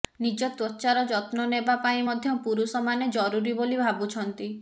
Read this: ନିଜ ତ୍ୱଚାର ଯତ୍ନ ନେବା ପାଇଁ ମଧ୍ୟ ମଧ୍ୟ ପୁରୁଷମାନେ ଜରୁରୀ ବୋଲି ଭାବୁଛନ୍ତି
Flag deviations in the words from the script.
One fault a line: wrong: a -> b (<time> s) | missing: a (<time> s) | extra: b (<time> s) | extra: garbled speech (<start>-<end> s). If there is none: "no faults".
missing: ମଧ୍ୟ (2.4 s)